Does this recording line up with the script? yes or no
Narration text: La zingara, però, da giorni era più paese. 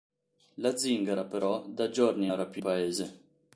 yes